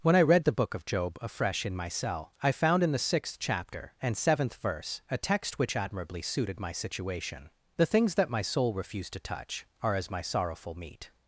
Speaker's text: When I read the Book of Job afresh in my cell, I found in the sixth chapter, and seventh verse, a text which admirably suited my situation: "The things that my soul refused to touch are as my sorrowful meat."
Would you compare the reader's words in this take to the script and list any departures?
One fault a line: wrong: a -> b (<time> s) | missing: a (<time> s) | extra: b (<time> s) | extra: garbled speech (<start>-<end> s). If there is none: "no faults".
no faults